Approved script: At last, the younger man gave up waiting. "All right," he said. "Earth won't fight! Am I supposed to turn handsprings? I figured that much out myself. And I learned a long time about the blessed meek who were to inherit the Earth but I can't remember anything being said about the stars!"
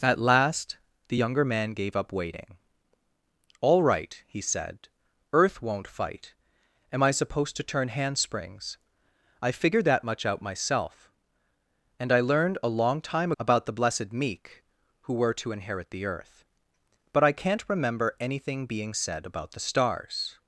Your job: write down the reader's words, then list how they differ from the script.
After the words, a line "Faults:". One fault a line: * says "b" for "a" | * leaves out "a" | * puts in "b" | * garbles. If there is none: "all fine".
At last, the younger man gave up waiting. "All right," he said. "Earth won't fight! Am I supposed to turn handsprings? I figured that much out myself. And I learned a long time about the blessed meek who were to inherit the Earth but I can't remember anything being said about the stars!"
Faults:
all fine